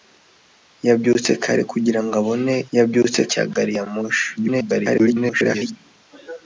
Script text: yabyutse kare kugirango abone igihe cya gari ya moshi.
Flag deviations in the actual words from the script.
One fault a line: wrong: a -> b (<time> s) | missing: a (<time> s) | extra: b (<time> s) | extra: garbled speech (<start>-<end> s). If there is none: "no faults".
wrong: igihe -> yabyutse (2.8 s)
extra: garbled speech (4.4-5.8 s)